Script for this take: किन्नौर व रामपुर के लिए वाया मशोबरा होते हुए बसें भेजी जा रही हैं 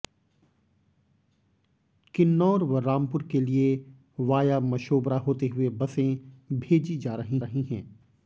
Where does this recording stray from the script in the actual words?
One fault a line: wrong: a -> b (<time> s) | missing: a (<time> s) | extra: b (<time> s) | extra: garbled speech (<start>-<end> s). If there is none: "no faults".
extra: रही (7.4 s)